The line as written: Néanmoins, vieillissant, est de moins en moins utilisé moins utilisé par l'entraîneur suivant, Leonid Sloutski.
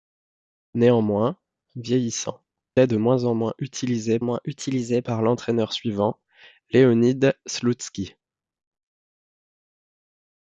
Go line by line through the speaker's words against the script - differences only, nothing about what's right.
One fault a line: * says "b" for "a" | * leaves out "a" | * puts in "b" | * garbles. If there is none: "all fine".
all fine